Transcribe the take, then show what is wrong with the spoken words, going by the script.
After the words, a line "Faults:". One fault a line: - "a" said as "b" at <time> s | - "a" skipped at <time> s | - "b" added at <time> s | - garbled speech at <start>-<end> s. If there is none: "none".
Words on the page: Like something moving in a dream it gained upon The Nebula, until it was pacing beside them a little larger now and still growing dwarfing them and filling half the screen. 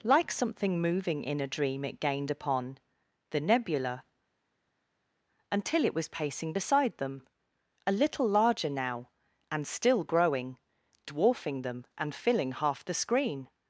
Like something moving in a dream it gained upon The Nebula, until it was pacing beside them a little larger now and still growing dwarfing them and filling half the screen.
Faults:
none